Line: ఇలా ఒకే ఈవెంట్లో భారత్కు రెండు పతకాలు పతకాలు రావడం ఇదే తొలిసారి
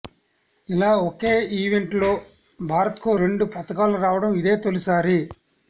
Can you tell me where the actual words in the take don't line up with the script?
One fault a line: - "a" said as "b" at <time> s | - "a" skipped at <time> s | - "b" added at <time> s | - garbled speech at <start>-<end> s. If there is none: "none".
- "పతకాలు" skipped at 4.0 s